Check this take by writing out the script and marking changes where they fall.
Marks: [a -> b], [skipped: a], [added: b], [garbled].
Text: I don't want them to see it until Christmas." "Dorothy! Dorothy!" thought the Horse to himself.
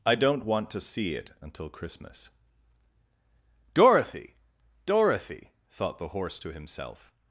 I don't want [skipped: them] to see it until Christmas." "Dorothy! Dorothy!" thought the Horse to himself.